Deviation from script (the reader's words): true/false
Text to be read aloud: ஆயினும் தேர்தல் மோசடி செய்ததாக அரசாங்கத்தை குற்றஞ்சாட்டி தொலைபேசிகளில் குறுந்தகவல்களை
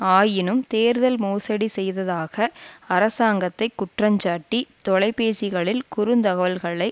false